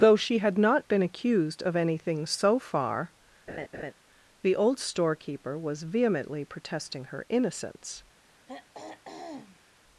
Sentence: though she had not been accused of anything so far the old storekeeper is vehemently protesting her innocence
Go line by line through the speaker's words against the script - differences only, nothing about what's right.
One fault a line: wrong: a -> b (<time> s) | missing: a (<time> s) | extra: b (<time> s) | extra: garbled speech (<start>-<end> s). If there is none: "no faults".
wrong: is -> was (5.6 s)